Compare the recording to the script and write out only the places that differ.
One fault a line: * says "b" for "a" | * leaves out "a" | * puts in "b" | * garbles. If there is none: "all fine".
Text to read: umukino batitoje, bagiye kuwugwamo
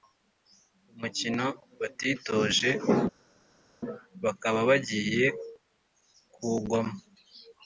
* puts in "bakaba"